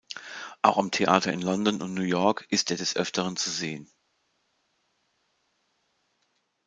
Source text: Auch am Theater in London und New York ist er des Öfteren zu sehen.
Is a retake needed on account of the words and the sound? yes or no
no